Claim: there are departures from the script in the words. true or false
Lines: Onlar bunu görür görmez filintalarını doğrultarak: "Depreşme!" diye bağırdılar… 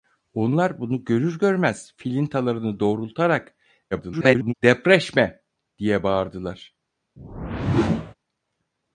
true